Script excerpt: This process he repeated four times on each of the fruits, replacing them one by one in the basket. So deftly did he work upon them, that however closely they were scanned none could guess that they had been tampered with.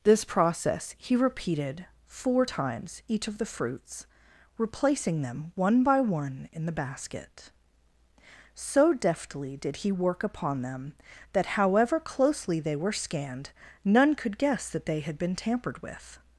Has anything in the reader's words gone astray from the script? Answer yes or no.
yes